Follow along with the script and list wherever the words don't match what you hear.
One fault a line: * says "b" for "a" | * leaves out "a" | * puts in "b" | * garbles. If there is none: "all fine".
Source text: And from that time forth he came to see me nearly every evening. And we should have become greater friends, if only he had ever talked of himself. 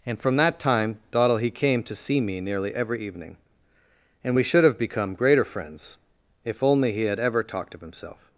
* says "dottle" for "forth"